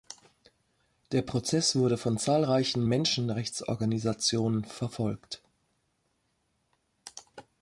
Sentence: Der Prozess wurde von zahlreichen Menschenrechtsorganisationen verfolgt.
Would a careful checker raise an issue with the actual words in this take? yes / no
no